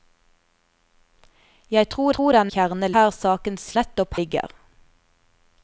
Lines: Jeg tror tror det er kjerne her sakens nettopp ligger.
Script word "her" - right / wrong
right